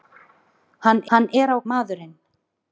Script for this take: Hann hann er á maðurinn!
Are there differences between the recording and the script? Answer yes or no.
no